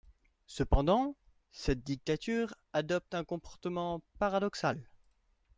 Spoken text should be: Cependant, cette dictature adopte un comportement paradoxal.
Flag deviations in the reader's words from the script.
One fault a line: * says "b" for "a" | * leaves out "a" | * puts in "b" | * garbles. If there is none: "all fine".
all fine